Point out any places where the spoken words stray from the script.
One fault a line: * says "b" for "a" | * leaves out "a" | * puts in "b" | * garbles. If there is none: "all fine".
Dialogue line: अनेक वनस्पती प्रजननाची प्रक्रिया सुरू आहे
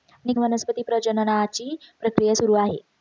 all fine